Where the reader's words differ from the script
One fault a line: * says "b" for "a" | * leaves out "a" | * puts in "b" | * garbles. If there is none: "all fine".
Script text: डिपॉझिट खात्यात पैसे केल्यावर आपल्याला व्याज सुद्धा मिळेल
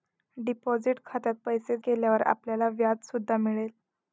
all fine